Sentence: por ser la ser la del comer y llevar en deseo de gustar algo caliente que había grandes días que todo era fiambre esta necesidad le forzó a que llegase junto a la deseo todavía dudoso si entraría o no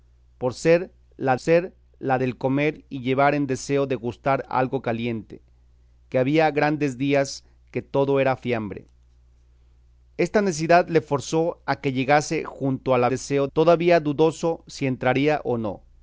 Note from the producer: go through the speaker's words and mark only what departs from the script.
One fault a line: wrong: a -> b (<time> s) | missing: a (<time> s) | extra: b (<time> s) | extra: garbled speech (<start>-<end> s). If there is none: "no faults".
no faults